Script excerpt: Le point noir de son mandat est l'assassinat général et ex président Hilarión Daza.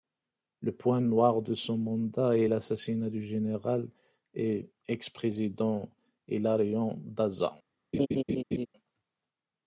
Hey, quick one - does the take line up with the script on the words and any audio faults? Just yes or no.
no